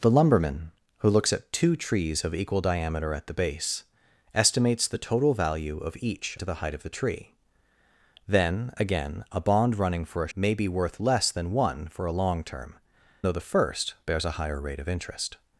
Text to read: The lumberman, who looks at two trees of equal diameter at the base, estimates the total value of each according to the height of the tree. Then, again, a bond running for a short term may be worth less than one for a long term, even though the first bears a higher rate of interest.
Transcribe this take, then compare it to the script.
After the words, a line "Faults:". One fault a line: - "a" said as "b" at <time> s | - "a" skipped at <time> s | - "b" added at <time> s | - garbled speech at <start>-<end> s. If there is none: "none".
The lumberman, who looks at two trees of equal diameter at the base, estimates the total value of each to the height of the tree. Then, again, a bond running for a may be worth less than one for a long term, though the first bears a higher rate of interest.
Faults:
- "according" skipped at 6.4 s
- "short term" skipped at 10.3 s
- "even" skipped at 12.7 s